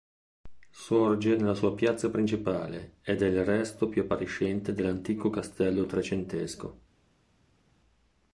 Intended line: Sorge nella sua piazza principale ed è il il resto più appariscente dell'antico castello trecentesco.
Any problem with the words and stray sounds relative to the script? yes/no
yes